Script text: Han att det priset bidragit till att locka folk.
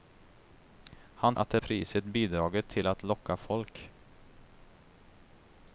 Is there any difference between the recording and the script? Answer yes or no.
no